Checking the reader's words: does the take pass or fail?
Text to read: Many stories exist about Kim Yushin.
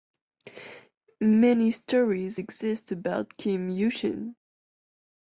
pass